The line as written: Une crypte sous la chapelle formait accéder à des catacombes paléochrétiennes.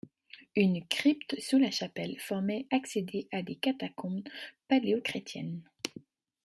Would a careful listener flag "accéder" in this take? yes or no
no